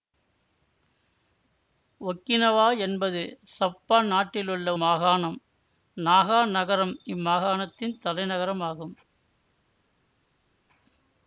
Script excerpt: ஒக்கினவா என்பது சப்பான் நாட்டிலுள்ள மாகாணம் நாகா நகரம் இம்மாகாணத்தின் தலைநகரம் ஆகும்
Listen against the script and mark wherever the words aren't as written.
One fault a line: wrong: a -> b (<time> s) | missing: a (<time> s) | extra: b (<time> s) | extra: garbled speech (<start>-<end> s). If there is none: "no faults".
no faults